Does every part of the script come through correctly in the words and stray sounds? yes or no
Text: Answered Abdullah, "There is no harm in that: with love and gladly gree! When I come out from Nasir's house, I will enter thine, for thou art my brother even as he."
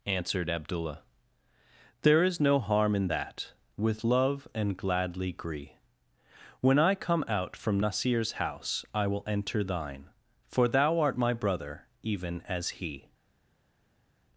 yes